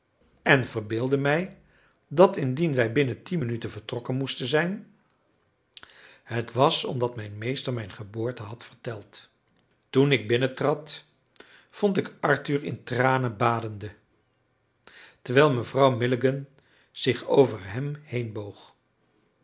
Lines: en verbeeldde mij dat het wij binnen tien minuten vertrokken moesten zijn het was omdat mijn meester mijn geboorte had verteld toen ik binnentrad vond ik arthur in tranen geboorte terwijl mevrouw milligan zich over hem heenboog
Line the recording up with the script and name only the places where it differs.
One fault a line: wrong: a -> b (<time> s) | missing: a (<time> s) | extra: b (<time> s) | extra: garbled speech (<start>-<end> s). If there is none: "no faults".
wrong: het -> indien (2.4 s)
wrong: geboorte -> badende (13.4 s)